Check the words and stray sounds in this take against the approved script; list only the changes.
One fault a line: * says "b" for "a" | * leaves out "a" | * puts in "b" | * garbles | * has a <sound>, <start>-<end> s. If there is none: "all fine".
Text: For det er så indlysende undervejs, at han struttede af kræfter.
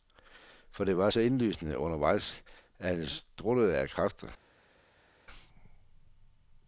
* says "var" for "er"